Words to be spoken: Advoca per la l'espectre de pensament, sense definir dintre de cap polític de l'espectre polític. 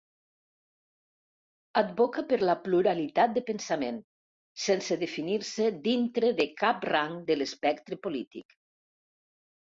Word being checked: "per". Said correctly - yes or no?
yes